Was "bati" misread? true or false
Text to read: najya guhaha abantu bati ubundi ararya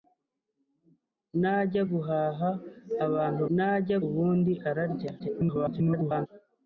true